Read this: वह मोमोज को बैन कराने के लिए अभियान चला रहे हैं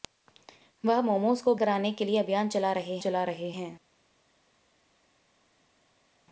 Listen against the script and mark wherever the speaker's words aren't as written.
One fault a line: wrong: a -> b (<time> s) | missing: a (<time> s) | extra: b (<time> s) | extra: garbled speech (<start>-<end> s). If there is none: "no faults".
missing: बैन (1.6 s)
extra: चला रहे (3.0 s)